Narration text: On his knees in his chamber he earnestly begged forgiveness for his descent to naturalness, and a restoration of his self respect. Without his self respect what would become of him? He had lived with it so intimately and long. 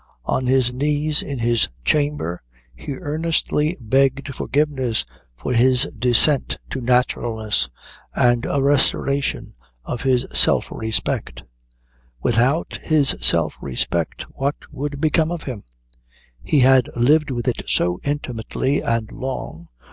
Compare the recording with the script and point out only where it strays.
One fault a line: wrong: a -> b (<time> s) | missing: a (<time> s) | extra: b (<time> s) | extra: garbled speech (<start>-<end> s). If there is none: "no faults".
no faults